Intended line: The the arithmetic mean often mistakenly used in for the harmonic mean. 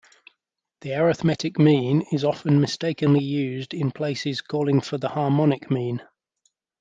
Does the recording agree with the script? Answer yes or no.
no